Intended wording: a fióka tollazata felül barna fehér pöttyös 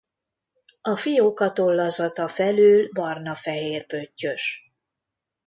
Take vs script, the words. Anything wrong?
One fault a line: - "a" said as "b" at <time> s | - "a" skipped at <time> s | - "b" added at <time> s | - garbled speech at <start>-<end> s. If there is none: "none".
none